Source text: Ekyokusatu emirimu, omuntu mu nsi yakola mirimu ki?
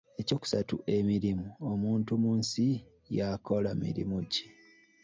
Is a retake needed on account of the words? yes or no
no